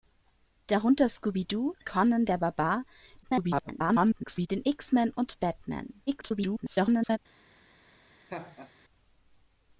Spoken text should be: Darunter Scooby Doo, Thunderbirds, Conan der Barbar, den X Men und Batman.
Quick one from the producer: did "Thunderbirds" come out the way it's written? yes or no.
no